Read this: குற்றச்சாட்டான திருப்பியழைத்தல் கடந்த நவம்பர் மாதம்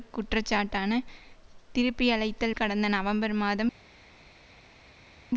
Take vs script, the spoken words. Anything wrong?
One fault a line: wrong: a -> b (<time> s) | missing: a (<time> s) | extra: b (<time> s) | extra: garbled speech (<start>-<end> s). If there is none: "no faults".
no faults